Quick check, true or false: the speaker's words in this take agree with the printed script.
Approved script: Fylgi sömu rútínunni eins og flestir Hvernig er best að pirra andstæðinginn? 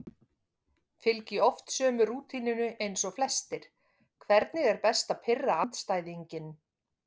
false